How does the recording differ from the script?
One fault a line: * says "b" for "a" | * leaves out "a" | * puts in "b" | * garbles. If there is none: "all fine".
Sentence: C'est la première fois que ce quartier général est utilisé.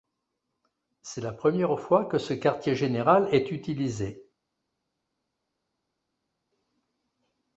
all fine